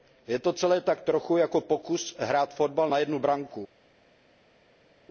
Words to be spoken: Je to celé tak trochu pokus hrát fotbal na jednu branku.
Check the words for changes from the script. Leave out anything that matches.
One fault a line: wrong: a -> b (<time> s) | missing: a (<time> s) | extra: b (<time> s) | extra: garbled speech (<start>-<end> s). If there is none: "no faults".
extra: jako (1.4 s)